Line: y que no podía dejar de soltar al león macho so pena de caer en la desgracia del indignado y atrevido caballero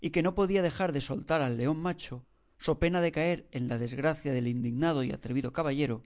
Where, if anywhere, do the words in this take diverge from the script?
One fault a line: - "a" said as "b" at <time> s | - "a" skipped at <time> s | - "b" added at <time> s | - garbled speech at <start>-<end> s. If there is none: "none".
none